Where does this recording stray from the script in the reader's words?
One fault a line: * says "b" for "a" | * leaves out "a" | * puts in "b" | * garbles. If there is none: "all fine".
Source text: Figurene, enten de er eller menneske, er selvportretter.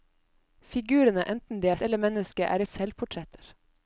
all fine